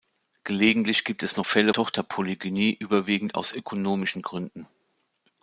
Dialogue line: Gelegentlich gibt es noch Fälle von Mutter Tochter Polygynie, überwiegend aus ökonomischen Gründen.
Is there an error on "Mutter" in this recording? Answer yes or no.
yes